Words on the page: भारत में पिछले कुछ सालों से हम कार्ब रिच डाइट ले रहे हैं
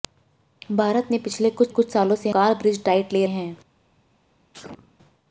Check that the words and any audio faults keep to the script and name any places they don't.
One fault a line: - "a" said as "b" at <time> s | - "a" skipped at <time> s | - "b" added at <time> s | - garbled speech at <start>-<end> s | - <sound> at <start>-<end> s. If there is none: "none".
- "कुछ" added at 1.7 s
- "हम" skipped at 2.3 s
- "रहे" skipped at 3.2 s
- sneeze at 4.5-5.0 s